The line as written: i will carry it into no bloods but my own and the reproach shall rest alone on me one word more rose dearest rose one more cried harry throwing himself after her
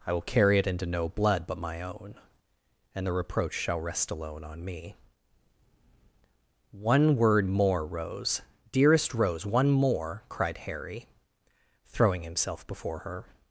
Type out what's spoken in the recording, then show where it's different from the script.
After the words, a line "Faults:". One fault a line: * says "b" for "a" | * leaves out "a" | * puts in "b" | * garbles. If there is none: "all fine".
i will carry it into no blood but my own and the reproach shall rest alone on me one word more rose dearest rose one more cried harry throwing himself before her
Faults:
* says "blood" for "bloods"
* says "before" for "after"